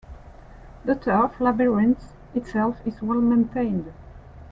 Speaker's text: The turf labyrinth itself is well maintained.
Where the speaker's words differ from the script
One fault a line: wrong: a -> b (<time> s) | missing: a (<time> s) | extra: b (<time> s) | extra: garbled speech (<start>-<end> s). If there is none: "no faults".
no faults